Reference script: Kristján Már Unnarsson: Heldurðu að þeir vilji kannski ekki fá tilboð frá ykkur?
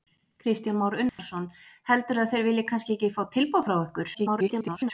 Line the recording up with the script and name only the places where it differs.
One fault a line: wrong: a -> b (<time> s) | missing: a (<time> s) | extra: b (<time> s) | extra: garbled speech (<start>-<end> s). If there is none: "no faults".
extra: garbled speech (4.1-4.9 s)